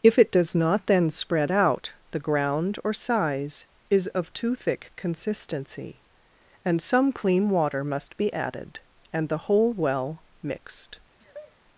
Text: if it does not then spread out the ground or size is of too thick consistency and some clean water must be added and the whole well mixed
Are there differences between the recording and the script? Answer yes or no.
no